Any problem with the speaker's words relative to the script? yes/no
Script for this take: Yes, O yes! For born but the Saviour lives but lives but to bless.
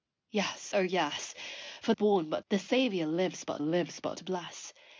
no